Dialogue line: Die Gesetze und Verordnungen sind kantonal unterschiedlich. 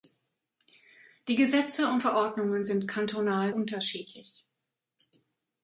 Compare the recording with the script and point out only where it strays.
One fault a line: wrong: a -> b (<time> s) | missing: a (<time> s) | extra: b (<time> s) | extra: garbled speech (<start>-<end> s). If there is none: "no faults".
no faults